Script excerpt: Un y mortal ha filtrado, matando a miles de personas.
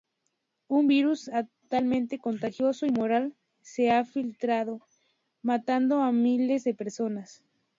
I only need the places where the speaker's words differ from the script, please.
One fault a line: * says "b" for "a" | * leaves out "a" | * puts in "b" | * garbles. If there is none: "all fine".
* puts in "virus altamente contagioso"
* puts in "se"